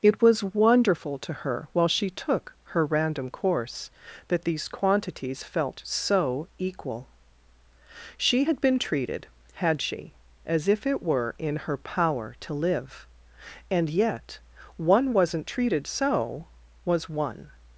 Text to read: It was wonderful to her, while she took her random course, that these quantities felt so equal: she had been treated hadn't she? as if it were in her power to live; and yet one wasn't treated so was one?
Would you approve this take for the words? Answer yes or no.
no